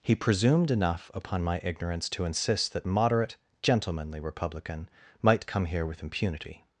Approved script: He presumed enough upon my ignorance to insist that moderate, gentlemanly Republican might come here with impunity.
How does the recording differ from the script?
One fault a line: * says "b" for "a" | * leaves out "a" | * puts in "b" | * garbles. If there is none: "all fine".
all fine